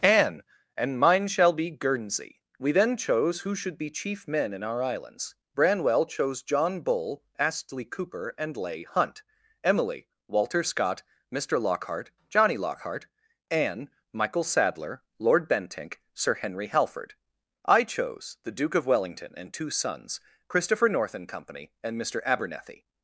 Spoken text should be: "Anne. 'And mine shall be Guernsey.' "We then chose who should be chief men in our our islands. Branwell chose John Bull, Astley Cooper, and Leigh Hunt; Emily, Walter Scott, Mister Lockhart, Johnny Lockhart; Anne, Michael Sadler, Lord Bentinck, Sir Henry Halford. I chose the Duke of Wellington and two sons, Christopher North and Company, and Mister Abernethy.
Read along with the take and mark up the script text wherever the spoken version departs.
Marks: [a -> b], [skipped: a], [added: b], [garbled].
"Anne. 'And mine shall be Guernsey.' "We then chose who should be chief men in our [skipped: our] islands. Branwell chose John Bull, Astley Cooper, and Leigh Hunt; Emily, Walter Scott, Mister Lockhart, Johnny Lockhart; Anne, Michael Sadler, Lord Bentinck, Sir Henry Halford. I chose the Duke of Wellington and two sons, Christopher North and Company, and Mister Abernethy.